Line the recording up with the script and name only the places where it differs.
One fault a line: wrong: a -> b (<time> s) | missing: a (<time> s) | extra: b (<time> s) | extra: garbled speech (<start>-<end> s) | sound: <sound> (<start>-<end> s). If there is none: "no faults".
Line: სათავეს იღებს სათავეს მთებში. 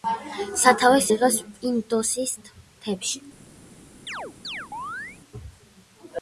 wrong: სათავეს -> პინდოსის (1.6 s)
sound: chirp (4.1-5.2 s)